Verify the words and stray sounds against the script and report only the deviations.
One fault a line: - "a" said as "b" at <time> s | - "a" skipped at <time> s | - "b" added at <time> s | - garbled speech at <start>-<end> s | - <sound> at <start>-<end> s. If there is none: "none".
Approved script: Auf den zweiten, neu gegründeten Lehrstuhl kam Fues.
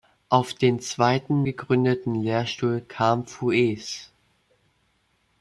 - "neu" skipped at 1.4 s